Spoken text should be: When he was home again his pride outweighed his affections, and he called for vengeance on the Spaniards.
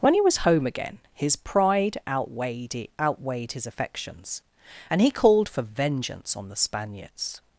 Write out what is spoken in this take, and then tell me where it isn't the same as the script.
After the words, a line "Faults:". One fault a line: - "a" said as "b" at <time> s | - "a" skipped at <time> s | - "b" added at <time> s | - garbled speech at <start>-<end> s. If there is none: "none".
When he was home again his pride outweighed outweighed his affections, and he called for vengeance on the Spaniards.
Faults:
- "outweighed" added at 3.0 s